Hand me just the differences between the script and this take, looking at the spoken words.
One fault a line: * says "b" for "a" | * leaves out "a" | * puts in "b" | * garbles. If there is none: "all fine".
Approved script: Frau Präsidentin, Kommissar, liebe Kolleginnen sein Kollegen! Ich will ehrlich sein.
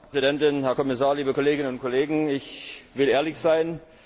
* puts in "Herr"
* says "und" for "sein"